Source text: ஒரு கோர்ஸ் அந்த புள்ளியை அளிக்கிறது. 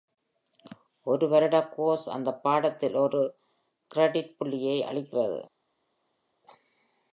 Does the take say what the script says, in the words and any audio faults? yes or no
no